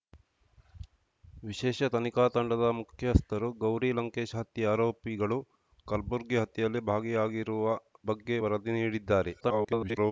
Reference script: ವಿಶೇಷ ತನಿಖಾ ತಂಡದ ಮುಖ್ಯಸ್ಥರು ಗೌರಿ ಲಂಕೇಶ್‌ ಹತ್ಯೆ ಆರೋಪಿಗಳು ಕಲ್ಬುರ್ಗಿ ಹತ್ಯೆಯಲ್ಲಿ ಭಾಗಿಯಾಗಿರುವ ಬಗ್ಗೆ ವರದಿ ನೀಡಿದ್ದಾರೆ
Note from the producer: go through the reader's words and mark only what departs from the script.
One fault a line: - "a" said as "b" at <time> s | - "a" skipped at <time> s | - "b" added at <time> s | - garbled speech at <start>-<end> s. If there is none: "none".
- garbled speech at 9.4-10.1 s